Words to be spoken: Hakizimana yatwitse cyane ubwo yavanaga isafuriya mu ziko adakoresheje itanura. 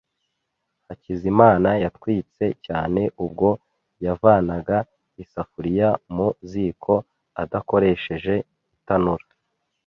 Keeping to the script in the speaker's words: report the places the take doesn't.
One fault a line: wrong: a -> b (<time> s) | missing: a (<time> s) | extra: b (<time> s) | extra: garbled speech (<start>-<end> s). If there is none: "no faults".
no faults